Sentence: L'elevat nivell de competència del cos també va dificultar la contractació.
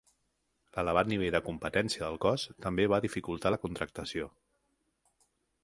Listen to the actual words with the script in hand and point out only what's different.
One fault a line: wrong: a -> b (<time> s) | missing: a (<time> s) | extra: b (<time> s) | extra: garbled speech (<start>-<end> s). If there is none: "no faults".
no faults